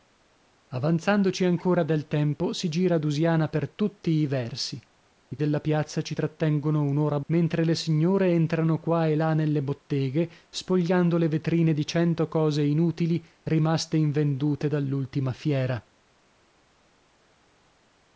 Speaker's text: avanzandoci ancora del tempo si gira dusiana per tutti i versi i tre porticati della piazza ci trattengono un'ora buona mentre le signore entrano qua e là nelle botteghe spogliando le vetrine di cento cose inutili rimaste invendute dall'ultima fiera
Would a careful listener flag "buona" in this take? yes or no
yes